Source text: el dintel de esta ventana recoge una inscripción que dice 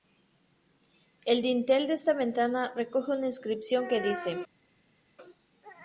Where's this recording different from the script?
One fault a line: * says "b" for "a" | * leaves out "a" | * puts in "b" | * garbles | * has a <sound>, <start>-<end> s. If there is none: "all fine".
all fine